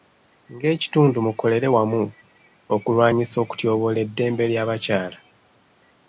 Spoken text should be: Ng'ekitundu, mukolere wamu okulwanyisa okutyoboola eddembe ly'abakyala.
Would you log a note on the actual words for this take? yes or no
no